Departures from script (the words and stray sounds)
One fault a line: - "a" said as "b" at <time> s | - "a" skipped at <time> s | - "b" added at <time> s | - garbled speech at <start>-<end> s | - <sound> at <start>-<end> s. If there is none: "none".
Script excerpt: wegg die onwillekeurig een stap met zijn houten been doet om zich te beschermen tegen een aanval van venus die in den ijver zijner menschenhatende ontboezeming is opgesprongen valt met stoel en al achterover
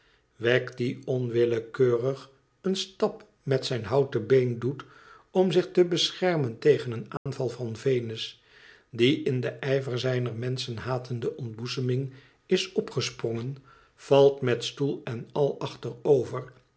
- dropout at 7.2-7.3 s